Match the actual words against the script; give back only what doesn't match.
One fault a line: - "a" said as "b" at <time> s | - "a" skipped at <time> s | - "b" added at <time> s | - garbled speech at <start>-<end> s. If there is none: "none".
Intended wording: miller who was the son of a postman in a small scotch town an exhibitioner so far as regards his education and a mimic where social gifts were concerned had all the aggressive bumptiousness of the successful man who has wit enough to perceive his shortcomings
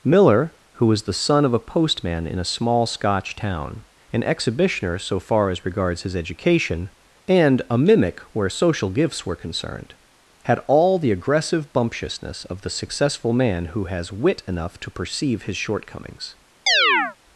none